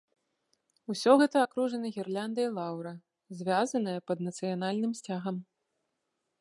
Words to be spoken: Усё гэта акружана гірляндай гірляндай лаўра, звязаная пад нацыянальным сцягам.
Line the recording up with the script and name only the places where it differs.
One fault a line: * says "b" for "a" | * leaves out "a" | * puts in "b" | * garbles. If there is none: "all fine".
* leaves out "гірляндай"